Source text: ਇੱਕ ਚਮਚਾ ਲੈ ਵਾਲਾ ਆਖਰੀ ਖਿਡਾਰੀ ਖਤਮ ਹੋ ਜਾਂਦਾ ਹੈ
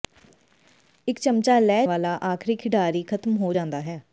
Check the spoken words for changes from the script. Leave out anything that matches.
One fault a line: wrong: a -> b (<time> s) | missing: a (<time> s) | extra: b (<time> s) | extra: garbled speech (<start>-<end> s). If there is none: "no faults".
no faults